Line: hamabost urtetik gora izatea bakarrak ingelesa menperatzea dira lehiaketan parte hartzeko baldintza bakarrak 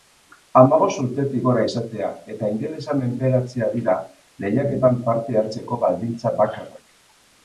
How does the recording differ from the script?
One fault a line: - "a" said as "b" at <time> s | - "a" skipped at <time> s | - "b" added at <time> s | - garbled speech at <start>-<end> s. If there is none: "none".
- "bakarrak" said as "eta" at 2.3 s